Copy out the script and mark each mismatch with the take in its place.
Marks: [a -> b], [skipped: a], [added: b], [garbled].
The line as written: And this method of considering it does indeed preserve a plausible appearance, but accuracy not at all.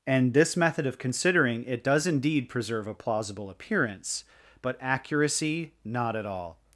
And this method of considering it does indeed preserve a plausible appearance, but accuracy not at all.